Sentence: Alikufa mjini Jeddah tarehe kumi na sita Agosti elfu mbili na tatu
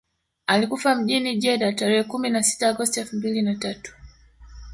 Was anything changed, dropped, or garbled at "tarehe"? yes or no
no